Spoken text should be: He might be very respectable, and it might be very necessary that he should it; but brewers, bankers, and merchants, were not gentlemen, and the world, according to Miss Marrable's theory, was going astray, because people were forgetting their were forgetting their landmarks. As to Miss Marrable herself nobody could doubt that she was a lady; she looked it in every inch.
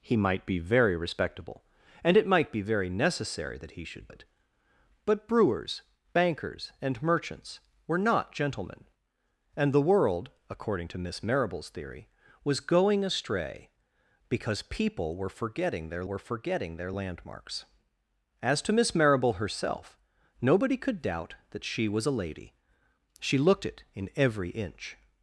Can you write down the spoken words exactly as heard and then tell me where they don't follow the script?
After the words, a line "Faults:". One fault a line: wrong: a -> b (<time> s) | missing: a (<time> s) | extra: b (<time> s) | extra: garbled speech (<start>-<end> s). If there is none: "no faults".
He might be very respectable, and it might be very necessary that he should it; but brewers, bankers, and merchants, were not gentlemen, and the world, according to Miss Marrable's theory, was going astray, because people were forgetting their were forgetting their landmarks. As to Miss Marrable herself nobody could doubt that she was a lady; she looked it in every inch.
Faults:
no faults